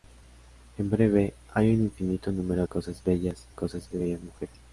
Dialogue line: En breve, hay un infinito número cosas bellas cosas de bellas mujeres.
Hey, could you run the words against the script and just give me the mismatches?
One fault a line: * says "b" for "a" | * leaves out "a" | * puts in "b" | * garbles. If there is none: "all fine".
all fine